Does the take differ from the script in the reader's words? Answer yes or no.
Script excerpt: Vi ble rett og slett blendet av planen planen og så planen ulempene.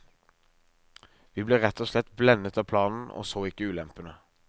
yes